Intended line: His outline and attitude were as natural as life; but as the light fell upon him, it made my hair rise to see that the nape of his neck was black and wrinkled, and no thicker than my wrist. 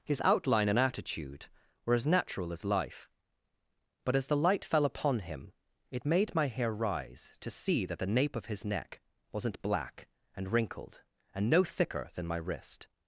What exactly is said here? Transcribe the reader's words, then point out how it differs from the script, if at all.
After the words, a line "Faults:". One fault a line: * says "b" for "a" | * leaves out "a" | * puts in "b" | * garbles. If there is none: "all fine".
His outline and attitude were as natural as life; but as the light fell upon him, it made my hair rise to see that the nape of his neck wasn't black and wrinkled, and no thicker than my wrist.
Faults:
* says "wasn't" for "was"